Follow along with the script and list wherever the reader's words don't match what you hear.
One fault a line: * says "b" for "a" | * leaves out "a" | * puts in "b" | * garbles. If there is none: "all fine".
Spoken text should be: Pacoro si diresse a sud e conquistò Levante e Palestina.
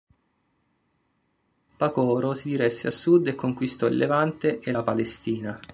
* puts in "il"
* puts in "la"